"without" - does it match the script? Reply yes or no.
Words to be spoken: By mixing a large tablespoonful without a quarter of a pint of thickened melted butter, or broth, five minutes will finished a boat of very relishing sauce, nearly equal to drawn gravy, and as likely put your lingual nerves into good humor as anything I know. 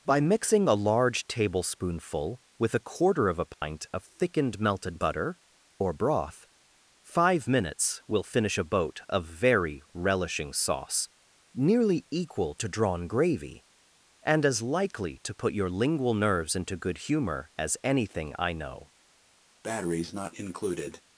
no